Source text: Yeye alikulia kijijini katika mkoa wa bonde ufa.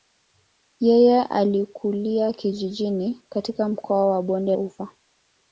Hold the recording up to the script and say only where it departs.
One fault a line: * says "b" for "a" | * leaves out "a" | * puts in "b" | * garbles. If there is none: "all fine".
all fine